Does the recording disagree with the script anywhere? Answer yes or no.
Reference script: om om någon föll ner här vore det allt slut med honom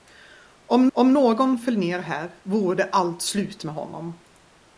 no